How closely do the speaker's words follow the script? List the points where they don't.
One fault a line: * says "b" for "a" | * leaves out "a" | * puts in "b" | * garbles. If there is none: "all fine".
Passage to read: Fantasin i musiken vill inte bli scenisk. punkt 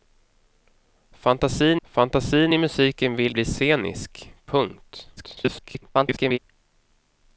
* puts in "fantasin"
* leaves out "inte"
* garbles